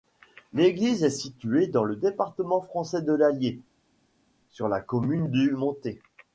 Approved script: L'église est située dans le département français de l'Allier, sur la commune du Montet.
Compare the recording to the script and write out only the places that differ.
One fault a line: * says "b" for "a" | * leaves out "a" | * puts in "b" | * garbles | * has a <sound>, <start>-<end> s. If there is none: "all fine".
all fine